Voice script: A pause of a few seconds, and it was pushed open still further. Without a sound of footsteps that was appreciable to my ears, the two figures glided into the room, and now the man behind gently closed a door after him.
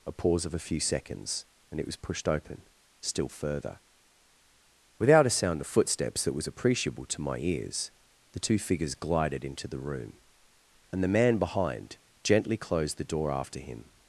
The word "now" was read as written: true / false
false